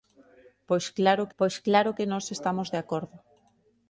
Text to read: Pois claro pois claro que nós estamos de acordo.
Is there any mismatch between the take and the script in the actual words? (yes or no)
no